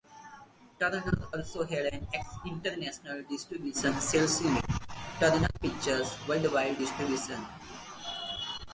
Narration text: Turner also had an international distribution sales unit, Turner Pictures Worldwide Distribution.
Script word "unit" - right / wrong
right